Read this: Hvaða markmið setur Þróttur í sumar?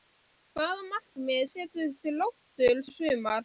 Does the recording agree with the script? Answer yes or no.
yes